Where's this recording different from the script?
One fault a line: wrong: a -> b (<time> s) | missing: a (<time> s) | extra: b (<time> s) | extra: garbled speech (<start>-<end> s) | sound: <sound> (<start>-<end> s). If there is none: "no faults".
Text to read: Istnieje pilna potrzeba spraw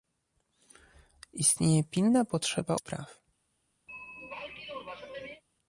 sound: throat clearing (3.9-5.4 s)